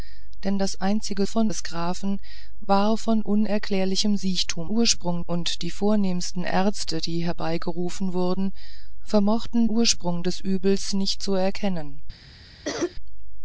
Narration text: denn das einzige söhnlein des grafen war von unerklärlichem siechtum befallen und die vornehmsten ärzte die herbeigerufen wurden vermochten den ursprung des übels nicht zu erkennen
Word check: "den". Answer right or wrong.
wrong